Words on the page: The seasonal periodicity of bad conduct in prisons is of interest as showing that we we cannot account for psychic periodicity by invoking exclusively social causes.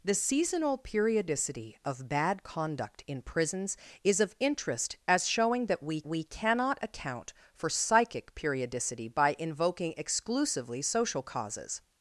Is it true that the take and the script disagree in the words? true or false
false